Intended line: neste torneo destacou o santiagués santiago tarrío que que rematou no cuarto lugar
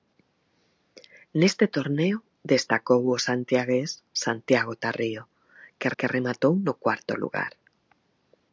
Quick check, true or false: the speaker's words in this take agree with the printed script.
true